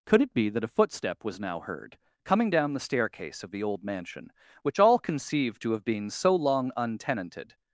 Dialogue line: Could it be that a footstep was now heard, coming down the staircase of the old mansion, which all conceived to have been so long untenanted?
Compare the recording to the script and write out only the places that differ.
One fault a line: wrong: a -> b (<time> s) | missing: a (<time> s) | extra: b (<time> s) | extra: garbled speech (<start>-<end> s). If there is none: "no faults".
no faults